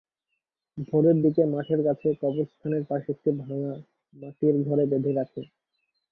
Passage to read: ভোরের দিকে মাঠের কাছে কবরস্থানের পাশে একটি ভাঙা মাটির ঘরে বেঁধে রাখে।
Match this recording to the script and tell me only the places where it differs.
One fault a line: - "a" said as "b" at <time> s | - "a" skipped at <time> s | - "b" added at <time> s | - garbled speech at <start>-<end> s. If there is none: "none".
none